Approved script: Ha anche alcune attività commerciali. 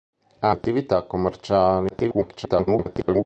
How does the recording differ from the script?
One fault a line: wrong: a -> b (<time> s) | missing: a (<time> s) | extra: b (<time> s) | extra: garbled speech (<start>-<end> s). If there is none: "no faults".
missing: anche alcune (0.5 s)
extra: garbled speech (1.9-3.3 s)